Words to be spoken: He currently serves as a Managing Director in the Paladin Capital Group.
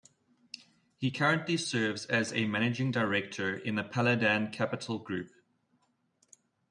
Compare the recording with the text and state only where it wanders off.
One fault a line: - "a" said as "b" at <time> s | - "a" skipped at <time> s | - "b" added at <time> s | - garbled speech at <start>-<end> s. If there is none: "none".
none